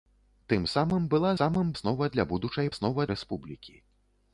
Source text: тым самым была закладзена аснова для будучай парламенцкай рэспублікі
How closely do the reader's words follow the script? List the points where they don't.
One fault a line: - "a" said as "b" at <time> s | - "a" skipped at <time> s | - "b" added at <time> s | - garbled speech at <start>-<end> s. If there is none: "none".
- "закладзена" said as "самым" at 1.4 s
- "парламенцкай" said as "аснова" at 2.7 s